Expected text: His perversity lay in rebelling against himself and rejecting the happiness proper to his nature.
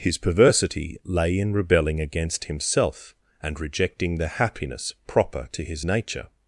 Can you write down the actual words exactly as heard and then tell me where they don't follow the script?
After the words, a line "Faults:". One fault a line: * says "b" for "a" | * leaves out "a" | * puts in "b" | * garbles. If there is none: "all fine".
His perversity lay in rebelling against himself and rejecting the happiness proper to his nature.
Faults:
all fine